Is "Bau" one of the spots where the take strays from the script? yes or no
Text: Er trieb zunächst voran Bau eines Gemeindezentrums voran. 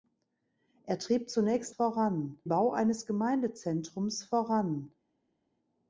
no